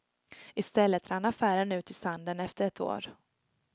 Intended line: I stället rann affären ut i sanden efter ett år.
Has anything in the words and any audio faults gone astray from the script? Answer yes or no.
no